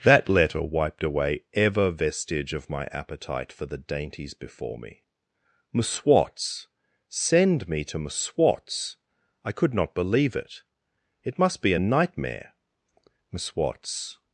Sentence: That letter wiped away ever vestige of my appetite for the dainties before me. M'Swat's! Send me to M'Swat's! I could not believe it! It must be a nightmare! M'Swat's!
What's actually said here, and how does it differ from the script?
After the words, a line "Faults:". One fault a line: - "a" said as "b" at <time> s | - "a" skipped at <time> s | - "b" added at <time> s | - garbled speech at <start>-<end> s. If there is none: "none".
That letter wiped away ever vestige of my appetite for the dainties before me. M'Swat's! Send me to M'Swat's! I could not believe it! It must be a nightmare! M'Swat's!
Faults:
none